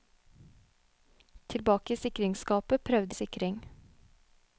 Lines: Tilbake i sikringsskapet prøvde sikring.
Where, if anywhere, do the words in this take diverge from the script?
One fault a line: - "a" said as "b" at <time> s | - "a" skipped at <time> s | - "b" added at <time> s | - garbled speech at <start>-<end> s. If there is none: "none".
none